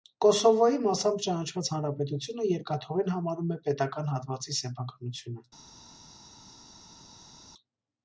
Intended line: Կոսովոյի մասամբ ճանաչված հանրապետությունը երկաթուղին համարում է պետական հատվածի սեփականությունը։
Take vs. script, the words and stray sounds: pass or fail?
pass